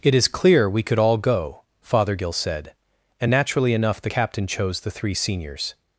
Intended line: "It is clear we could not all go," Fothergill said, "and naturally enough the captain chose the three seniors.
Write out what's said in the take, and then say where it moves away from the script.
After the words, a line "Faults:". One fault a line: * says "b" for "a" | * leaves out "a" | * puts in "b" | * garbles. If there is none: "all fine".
"It is clear we could all go," Fothergill said, "and naturally enough the captain chose the three seniors.
Faults:
* leaves out "not"